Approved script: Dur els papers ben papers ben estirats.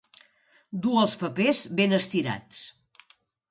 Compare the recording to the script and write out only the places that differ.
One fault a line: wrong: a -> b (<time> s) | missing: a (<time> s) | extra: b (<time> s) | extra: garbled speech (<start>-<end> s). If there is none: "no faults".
missing: papers ben (2.0 s)